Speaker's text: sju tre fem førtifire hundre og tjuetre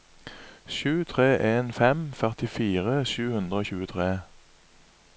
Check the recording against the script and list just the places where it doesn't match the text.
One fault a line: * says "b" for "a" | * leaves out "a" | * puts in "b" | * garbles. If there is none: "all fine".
* puts in "en"
* puts in "sju"